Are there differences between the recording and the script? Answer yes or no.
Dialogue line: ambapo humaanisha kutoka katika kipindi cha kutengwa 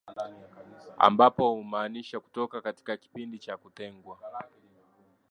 no